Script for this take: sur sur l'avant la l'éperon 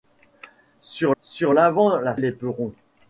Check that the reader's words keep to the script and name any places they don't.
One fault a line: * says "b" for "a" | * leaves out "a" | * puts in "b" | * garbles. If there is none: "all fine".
all fine